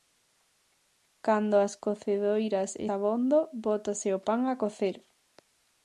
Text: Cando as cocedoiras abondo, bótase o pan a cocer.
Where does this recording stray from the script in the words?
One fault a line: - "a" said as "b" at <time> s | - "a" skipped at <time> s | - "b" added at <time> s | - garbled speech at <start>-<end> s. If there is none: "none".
none